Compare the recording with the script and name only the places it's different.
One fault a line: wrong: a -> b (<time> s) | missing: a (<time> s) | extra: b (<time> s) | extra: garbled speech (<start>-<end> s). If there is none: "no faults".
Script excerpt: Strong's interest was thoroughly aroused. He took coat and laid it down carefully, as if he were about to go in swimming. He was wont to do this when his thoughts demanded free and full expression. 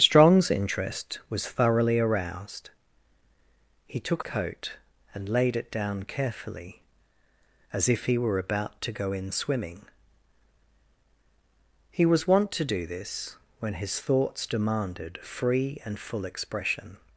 no faults